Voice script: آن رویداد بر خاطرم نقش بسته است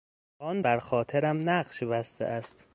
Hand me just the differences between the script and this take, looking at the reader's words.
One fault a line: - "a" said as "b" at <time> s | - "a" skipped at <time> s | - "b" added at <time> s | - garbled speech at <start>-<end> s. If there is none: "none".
- "رویداد" skipped at 0.6 s